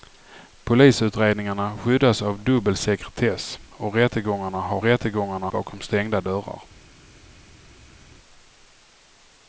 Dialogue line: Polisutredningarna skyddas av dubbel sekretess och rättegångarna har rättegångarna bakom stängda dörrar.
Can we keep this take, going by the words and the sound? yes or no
yes